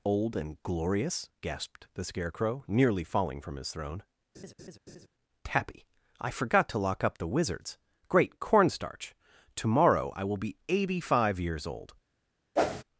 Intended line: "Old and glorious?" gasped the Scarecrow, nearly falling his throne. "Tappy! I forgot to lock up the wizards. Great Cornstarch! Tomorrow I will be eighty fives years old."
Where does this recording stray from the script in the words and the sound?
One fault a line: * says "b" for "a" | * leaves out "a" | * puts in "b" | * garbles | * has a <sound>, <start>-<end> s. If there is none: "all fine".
* puts in "from"
* has a laugh, 4.3-5.1 s
* says "five" for "fives"
* has a whoosh, 12.6-12.8 s